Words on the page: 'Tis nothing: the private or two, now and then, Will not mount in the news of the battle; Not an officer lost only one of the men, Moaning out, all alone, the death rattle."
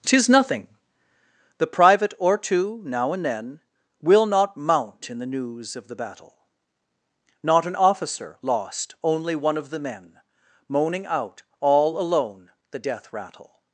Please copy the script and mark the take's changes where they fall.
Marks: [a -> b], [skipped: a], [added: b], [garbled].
'Tis nothing: the private or two, now and then, Will not mount in the news of the battle; Not an officer lost only one of the men, Moaning out, all alone, the death rattle."